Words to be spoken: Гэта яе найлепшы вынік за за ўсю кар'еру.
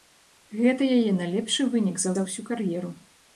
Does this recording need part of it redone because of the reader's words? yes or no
no